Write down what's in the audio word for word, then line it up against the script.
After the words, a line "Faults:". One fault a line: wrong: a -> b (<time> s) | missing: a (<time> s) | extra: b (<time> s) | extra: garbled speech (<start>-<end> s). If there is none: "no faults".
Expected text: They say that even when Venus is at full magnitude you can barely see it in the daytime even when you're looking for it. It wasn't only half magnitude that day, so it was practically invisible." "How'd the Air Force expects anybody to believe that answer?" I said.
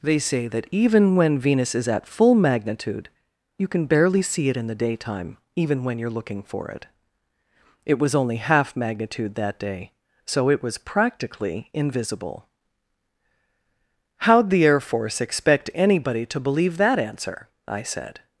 They say that even when Venus is at full magnitude you can barely see it in the daytime even when you're looking for it. It was only half magnitude that day, so it was practically invisible." "How'd the Air Force expect anybody to believe that answer?" I said.
Faults:
wrong: wasn't -> was (8.0 s)
wrong: expects -> expect (15.2 s)